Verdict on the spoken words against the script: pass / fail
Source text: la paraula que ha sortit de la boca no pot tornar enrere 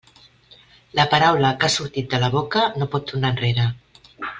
pass